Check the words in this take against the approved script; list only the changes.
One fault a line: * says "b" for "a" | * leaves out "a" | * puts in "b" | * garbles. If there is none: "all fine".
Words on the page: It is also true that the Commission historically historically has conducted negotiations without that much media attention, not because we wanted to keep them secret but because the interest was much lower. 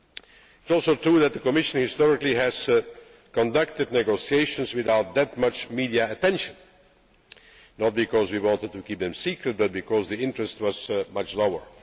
* leaves out "historically"